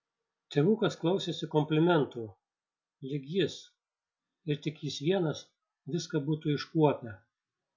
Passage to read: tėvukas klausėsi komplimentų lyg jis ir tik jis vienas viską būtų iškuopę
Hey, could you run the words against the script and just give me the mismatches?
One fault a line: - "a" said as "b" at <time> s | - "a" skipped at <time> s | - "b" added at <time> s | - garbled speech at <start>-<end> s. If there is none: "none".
none